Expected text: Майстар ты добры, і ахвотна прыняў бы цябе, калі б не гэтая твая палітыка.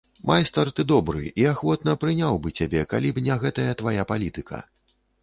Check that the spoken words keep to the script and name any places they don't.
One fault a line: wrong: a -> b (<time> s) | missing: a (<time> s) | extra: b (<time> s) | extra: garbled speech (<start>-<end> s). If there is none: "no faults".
no faults